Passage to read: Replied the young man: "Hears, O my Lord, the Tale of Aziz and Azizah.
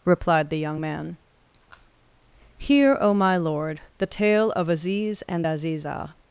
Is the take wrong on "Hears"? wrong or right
wrong